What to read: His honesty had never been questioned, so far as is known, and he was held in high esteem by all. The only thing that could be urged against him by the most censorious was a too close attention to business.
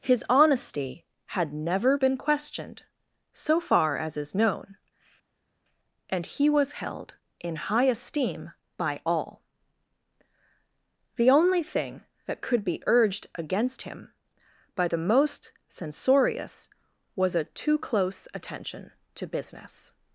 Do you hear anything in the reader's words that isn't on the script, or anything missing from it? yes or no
no